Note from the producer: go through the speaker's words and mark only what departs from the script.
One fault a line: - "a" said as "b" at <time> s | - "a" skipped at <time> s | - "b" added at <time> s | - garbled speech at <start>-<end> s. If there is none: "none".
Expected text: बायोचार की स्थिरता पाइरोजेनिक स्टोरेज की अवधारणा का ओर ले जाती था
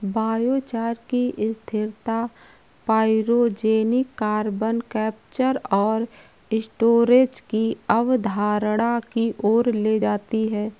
- "कार्बन कैप्चर और" added at 4.2 s
- "का" said as "की" at 9.1 s
- "था" said as "है" at 10.5 s